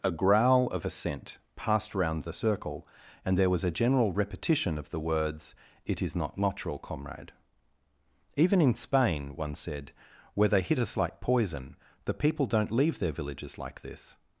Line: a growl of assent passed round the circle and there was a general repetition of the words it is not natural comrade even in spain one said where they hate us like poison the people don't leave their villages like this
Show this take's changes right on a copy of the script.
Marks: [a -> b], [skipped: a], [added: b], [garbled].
a growl of assent passed round the circle and there was a general repetition of the words it is not natural comrade even in spain one said where they [hate -> hit] us like poison the people don't leave their villages like this